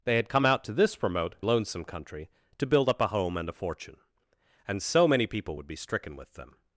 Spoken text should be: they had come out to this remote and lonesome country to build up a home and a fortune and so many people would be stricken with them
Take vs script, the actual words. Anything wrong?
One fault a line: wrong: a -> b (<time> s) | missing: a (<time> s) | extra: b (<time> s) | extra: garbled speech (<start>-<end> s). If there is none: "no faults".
missing: and (1.4 s)